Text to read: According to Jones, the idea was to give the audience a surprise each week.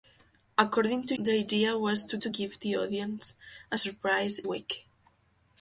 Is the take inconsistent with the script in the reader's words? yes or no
yes